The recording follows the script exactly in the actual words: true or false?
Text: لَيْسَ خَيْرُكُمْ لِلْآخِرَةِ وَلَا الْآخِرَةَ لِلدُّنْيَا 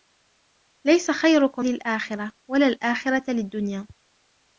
true